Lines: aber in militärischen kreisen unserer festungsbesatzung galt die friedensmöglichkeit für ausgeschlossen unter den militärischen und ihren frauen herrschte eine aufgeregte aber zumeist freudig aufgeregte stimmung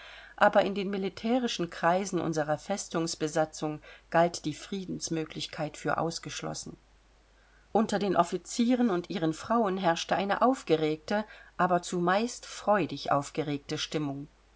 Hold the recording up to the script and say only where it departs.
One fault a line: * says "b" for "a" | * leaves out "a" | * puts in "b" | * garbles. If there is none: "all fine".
* puts in "den"
* says "offizieren" for "militärischen"